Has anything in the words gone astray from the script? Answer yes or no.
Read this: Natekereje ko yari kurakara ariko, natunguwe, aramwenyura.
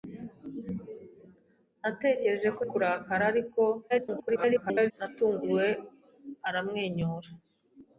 yes